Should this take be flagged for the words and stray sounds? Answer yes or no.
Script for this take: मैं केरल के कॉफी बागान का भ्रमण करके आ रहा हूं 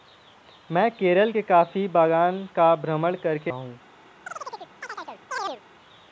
yes